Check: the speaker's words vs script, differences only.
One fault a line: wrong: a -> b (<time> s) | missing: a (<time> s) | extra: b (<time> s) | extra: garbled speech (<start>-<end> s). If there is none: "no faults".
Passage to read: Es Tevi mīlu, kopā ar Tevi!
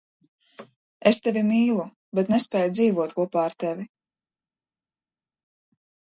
extra: bet nespēju dzīvot (2.2 s)